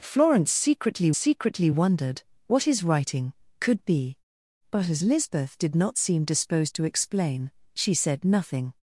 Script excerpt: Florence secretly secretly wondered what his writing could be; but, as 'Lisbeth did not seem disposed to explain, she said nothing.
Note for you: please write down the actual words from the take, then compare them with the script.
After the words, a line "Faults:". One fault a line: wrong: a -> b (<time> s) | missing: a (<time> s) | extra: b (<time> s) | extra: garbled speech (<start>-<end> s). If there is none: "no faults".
Florence secretly secretly wondered what his writing could be; but, as 'Lisbeth did not seem disposed to explain, she said nothing.
Faults:
no faults